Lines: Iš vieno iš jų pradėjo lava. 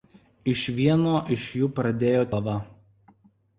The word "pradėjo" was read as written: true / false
true